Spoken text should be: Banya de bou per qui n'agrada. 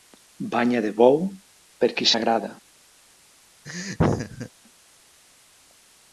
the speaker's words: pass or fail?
pass